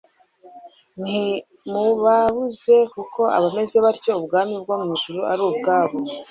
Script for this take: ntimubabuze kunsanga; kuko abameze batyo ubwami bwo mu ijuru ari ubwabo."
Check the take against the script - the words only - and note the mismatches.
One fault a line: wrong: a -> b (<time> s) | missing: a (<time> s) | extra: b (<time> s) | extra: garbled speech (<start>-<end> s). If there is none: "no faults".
missing: kunsanga (2.8 s)